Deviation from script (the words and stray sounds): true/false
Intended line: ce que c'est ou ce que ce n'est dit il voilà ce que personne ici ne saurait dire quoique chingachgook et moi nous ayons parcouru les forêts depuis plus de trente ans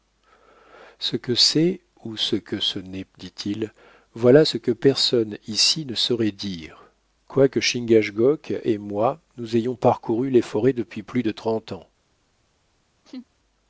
true